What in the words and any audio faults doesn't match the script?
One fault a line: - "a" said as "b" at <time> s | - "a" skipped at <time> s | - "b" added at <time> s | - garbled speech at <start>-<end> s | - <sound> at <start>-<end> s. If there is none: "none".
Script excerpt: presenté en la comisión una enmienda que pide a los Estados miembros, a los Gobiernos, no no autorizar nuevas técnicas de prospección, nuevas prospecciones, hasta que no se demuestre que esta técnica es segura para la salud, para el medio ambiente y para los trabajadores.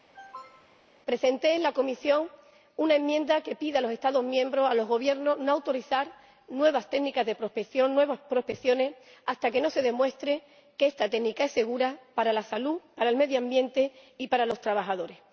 - cough at 0.1-0.8 s
- "no" skipped at 5.5 s